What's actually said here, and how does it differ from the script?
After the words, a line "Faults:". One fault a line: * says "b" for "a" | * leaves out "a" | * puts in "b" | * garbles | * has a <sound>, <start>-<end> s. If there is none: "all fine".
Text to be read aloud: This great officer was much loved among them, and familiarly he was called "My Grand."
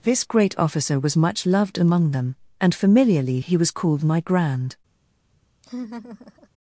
This great officer was much loved among them, and familiarly he was called "My Grand."
Faults:
* has a laugh, 5.6-6.5 s